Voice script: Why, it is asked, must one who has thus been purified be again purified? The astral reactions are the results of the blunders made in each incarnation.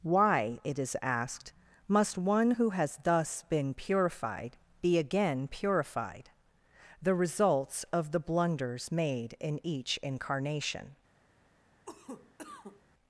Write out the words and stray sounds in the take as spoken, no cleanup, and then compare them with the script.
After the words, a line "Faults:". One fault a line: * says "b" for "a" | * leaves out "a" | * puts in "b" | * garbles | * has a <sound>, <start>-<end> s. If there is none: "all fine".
Why, it is asked, must one who has thus been purified be again purified? The results of the blunders made in each incarnation.
Faults:
* leaves out "astral reactions are the"
* has a cough, 11.9-12.8 s